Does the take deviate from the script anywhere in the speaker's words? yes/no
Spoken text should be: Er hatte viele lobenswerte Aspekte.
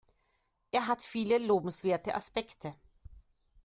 yes